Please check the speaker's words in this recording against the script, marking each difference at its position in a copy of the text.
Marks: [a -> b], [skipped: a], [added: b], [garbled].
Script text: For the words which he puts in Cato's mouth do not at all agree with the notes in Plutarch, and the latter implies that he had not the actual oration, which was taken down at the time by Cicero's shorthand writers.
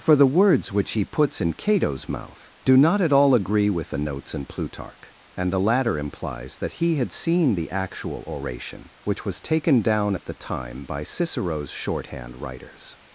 For the words which he puts in Cato's mouth do not at all agree with the notes in Plutarch, and the latter implies that he had [not -> seen] the actual oration, which was taken down at the time by Cicero's shorthand writers.